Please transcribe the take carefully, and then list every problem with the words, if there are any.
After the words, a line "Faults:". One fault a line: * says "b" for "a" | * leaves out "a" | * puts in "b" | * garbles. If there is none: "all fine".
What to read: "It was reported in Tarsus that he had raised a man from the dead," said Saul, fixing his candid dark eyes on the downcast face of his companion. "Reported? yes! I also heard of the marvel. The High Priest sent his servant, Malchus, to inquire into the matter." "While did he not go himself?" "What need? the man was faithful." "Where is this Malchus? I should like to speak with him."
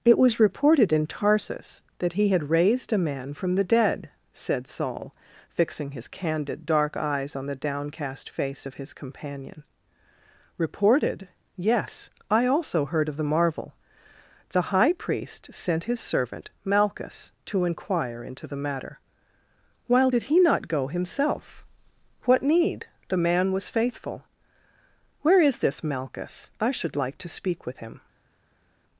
"It was reported in Tarsus that he had raised a man from the dead," said Saul, fixing his candid dark eyes on the downcast face of his companion. "Reported? yes! I also heard of the marvel. The High Priest sent his servant, Malchus, to inquire into the matter." "While did he not go himself?" "What need? the man was faithful." "Where is this Malchus? I should like to speak with him."
Faults:
all fine